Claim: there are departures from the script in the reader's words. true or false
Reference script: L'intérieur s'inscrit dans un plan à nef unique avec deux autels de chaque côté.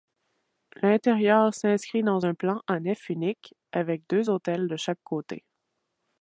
false